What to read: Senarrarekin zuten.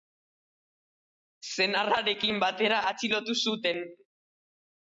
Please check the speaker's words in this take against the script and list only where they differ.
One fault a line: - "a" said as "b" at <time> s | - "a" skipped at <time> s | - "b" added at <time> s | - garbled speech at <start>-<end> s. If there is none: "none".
- "batera atxilotu" added at 2.5 s